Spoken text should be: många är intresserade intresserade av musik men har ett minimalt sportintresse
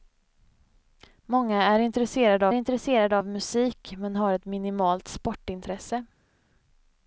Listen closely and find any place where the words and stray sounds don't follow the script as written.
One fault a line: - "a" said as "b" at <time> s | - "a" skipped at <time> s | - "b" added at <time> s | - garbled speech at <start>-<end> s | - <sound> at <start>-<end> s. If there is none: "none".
none